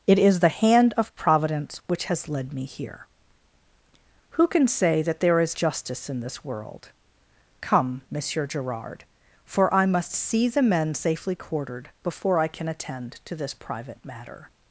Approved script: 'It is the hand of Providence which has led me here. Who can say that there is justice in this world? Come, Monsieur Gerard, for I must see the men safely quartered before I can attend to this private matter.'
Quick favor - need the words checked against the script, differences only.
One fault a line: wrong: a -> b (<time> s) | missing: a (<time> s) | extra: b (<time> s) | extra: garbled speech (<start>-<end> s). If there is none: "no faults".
no faults